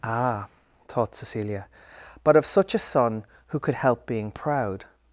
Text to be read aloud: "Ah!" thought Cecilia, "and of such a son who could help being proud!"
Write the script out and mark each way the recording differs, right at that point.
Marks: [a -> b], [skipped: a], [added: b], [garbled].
"Ah!" thought Cecilia, ["and -> but] of such a son who could help being proud!"